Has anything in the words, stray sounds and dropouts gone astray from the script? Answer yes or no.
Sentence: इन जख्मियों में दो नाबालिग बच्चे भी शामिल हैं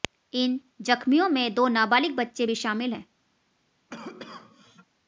yes